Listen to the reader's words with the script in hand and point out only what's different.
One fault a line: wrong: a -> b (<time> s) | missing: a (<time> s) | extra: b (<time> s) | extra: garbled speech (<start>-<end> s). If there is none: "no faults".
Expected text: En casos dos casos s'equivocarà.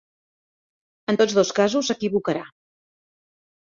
wrong: casos -> tots (1.2 s)